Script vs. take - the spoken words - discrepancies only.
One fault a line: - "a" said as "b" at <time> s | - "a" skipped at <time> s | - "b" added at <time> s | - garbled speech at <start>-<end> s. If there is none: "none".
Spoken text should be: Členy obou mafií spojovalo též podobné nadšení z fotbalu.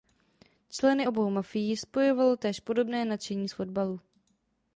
none